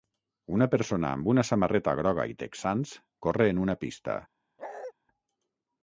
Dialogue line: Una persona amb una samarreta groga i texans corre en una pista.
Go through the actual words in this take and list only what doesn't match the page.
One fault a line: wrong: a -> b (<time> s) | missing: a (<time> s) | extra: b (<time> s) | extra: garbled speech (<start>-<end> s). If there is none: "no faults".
no faults